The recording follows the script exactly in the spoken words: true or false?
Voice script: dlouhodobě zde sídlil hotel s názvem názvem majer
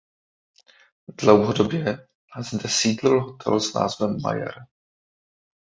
false